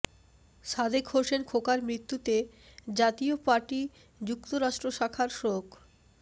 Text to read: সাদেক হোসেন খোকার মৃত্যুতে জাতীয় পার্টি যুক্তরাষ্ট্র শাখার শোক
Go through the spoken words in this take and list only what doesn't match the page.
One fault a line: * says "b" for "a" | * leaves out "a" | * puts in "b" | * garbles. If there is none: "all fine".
all fine